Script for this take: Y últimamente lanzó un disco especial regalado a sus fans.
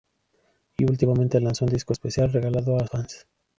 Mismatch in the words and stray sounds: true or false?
true